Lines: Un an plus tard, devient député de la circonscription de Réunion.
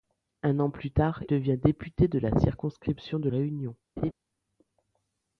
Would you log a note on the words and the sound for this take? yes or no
yes